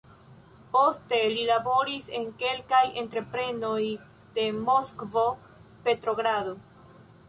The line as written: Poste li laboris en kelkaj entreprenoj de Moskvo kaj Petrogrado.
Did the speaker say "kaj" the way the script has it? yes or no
no